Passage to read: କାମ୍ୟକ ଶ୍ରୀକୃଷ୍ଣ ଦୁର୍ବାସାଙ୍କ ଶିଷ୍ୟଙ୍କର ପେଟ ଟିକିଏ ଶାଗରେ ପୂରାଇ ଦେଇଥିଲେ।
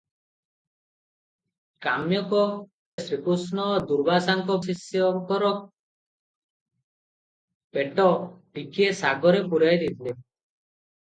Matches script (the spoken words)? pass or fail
pass